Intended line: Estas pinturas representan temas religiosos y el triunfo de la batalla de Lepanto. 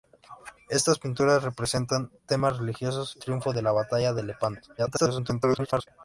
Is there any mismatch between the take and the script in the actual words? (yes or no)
yes